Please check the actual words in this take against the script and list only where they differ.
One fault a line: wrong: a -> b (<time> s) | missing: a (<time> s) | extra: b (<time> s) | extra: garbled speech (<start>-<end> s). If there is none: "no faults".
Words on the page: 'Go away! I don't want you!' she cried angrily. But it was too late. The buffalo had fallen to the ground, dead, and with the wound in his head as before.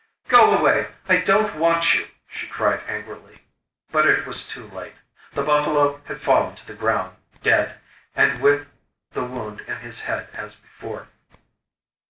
no faults